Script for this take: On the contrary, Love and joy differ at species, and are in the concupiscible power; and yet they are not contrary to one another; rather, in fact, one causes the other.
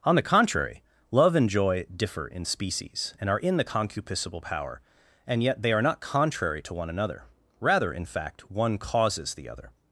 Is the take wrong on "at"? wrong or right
wrong